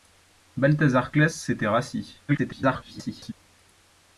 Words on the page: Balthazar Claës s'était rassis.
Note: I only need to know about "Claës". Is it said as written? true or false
true